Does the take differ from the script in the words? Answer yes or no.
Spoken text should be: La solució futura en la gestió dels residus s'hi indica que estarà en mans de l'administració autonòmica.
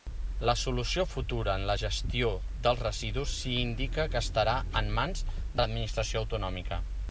no